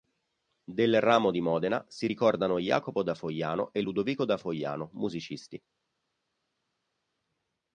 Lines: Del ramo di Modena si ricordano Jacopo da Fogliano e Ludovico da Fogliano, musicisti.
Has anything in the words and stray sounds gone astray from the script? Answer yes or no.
no